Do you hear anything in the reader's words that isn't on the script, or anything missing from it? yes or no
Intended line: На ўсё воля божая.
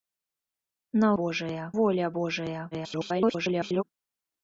yes